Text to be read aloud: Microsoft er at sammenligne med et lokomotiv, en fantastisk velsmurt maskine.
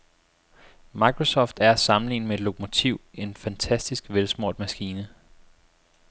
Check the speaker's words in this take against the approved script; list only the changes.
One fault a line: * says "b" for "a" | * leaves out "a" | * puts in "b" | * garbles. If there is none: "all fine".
all fine